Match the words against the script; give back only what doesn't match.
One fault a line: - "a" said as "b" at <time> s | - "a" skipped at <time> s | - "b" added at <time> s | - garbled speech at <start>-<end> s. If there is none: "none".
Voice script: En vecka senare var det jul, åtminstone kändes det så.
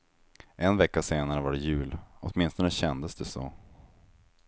none